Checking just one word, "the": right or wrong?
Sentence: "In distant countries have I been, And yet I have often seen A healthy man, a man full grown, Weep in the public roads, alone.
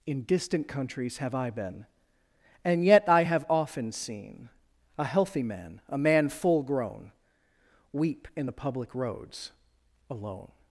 right